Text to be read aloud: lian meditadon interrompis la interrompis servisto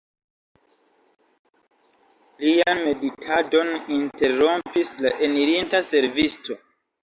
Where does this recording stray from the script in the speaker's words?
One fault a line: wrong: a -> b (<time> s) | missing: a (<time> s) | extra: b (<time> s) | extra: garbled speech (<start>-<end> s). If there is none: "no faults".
wrong: interrompis -> enirinta (5.3 s)